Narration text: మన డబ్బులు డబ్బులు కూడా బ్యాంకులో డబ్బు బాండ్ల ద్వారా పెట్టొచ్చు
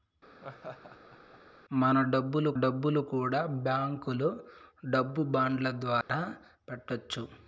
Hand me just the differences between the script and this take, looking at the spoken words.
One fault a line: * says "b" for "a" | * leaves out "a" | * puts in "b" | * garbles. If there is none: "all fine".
all fine